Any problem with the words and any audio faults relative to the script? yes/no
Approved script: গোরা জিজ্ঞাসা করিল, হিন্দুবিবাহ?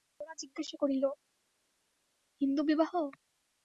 no